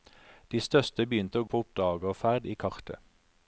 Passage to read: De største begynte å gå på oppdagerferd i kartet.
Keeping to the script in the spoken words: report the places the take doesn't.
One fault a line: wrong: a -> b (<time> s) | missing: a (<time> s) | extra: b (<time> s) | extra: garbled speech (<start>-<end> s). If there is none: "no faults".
missing: gå (1.5 s)